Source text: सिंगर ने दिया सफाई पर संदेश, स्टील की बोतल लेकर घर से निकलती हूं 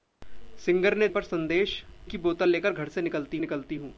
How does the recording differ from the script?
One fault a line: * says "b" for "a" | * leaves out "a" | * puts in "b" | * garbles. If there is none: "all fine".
* leaves out "दिया सफाई"
* leaves out "स्टील"
* puts in "निकलती"